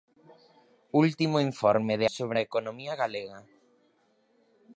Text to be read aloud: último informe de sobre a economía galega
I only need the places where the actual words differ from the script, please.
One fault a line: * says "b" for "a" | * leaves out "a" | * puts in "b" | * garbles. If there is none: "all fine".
all fine